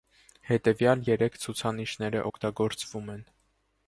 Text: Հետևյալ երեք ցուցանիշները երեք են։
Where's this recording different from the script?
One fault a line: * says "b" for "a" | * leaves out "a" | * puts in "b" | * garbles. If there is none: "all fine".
* says "օգտագործվում" for "երեք"